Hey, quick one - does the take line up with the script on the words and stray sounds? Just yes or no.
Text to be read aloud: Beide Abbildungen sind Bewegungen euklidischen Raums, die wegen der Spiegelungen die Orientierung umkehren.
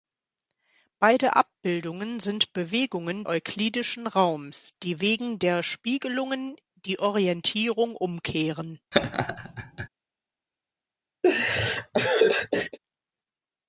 no